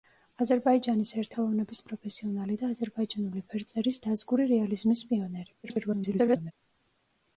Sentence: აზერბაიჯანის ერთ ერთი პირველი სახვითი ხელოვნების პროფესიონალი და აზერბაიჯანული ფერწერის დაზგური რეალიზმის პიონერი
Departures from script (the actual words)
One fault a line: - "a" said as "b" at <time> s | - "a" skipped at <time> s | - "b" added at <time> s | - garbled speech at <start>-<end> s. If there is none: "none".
- "ერთი პირველი სახვითი" skipped at 1.4 s
- garbled speech at 5.6-6.5 s